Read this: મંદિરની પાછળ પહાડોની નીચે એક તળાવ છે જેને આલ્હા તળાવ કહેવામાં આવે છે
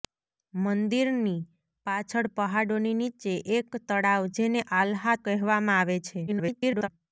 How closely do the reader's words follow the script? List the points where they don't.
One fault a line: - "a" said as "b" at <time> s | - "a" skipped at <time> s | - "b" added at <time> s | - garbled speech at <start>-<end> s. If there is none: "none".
- "છે" skipped at 4.2 s
- "તળાવ" skipped at 5.2 s
- garbled speech at 6.3-6.9 s